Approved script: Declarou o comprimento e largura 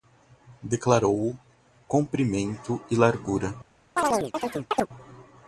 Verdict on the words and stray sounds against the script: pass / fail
fail